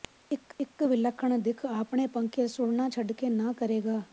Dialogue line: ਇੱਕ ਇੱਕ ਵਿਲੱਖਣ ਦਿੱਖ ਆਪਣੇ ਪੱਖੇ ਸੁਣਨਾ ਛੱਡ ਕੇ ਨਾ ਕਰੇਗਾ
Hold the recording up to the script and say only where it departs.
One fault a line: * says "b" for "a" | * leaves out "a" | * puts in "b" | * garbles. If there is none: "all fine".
all fine